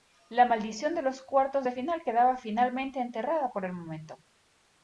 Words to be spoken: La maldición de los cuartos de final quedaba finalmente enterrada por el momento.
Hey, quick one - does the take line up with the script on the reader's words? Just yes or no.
yes